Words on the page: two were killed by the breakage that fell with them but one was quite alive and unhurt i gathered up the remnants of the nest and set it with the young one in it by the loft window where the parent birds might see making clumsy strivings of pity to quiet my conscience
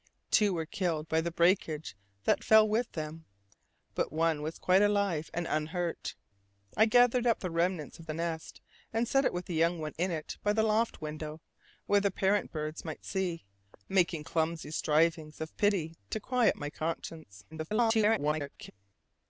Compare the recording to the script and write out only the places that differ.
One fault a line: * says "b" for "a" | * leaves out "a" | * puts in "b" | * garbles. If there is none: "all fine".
* garbles